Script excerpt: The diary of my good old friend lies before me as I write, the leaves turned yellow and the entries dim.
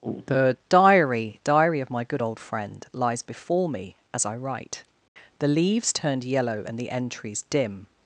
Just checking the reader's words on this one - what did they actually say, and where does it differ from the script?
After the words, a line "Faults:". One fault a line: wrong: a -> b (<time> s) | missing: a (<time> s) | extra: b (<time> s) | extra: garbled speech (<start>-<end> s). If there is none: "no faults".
The diary diary of my good old friend lies before me as I write, the leaves turned yellow and the entries dim.
Faults:
extra: diary (1.4 s)